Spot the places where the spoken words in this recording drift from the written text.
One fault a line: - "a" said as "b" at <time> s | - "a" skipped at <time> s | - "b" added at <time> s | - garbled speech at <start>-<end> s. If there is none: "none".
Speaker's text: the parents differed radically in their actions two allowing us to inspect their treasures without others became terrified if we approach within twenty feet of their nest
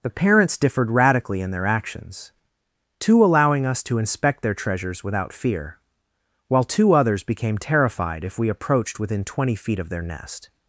- "fear while two" added at 5.3 s
- "approach" said as "approached" at 8.5 s